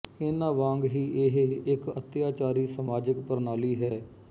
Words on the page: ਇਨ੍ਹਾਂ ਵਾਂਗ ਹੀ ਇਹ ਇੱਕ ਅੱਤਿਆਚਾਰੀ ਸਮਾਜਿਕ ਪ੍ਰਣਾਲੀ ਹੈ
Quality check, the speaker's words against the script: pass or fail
pass